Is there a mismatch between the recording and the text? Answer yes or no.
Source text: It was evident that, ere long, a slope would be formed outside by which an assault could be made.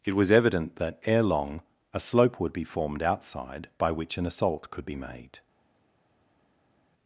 no